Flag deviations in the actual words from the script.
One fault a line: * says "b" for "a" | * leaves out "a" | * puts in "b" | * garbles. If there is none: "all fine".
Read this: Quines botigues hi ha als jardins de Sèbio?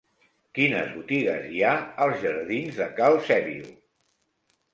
* puts in "Cal"